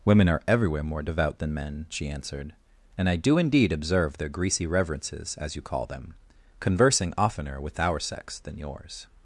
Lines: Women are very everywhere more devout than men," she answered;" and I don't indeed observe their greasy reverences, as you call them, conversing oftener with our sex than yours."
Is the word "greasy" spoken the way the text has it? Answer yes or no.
yes